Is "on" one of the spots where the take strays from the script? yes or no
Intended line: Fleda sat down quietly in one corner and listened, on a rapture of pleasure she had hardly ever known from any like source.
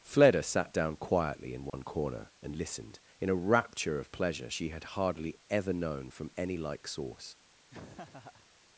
yes